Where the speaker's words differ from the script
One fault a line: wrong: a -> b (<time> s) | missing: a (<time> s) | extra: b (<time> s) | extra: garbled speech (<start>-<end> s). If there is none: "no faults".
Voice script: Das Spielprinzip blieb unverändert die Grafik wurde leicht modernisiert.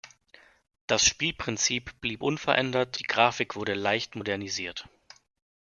no faults